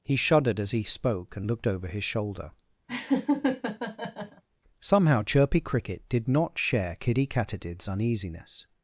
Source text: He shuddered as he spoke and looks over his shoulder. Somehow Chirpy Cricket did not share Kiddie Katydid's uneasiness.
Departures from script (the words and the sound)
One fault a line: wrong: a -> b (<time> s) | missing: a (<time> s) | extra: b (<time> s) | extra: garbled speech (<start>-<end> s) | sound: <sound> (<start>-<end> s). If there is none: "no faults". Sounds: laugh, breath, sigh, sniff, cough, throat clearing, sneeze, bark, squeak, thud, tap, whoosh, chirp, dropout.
wrong: looks -> looked (1.4 s)
sound: laugh (2.9-4.4 s)